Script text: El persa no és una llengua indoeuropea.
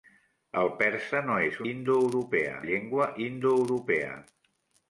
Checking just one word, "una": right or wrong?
wrong